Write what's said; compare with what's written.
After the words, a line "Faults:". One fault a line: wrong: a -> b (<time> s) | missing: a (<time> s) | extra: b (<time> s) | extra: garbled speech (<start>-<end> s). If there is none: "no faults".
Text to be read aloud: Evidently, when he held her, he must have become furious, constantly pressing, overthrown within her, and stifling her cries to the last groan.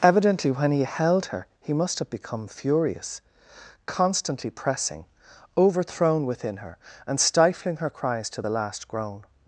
Evidently, when he held her, he must have become furious, constantly pressing, overthrown within her, and stifling her cries to the last groan.
Faults:
no faults